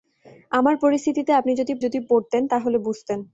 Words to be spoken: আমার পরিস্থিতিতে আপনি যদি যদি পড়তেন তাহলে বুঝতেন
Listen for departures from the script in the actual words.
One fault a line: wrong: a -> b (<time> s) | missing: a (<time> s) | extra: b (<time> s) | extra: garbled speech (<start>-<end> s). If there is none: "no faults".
no faults